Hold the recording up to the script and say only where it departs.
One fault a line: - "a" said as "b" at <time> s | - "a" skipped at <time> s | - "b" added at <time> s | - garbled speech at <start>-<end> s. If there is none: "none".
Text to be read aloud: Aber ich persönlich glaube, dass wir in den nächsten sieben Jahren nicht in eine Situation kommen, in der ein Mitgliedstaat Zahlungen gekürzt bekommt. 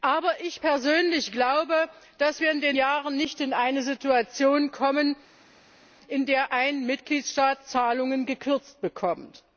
- "nächsten sieben" skipped at 2.8 s